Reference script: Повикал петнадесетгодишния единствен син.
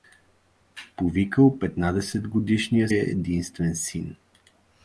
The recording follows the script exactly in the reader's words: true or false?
true